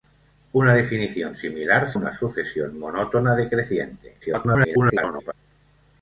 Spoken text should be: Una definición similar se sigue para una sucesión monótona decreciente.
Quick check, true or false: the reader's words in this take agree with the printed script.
false